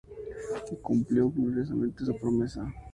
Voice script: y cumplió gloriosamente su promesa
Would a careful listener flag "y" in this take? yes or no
no